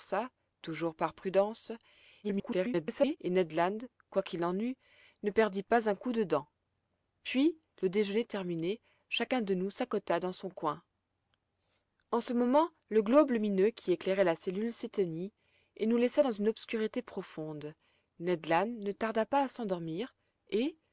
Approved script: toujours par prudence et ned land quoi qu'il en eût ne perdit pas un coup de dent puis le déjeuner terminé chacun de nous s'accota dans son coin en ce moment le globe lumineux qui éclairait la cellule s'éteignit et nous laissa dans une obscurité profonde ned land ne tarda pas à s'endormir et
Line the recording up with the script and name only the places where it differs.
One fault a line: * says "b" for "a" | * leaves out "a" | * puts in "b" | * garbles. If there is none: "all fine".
* garbles